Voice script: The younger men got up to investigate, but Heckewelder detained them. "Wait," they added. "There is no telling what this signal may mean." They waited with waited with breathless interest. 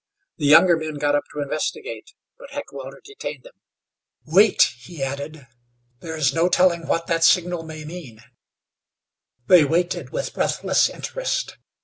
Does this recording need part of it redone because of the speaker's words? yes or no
yes